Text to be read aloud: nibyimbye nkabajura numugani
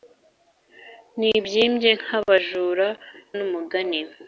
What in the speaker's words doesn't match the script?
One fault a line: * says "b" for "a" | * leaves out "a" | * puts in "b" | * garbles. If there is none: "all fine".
all fine